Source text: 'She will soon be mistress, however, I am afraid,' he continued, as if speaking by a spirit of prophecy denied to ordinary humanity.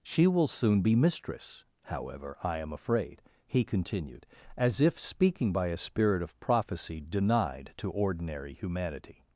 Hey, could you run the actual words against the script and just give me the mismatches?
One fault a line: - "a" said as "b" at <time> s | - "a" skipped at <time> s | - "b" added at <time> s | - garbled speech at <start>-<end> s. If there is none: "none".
none